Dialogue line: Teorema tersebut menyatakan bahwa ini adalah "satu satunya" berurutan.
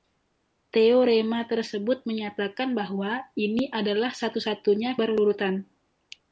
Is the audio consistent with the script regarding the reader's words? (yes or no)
yes